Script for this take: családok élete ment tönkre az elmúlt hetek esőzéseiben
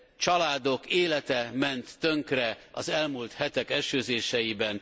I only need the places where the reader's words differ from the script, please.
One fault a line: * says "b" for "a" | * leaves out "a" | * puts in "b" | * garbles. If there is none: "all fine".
all fine